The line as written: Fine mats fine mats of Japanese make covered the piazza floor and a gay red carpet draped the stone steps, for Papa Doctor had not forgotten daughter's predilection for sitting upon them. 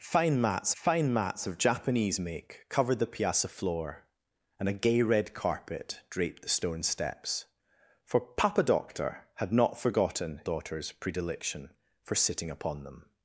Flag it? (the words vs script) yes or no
no